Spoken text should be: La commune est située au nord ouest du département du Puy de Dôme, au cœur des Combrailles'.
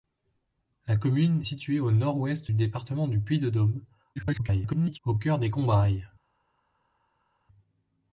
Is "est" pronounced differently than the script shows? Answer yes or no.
yes